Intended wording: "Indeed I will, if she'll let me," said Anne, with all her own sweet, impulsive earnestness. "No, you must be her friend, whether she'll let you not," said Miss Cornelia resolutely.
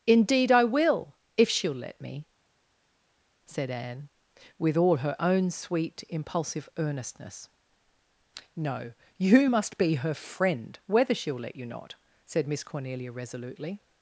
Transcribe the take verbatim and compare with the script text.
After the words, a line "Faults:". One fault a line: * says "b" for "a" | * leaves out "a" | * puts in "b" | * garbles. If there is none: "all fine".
"Indeed I will, if she'll let me," said Anne, with all her own sweet, impulsive earnestness. "No, you must be her friend, whether she'll let you not," said Miss Cornelia resolutely.
Faults:
all fine